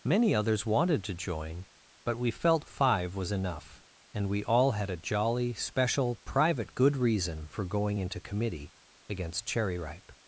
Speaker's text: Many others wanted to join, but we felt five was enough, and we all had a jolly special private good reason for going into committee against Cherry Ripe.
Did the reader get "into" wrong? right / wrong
right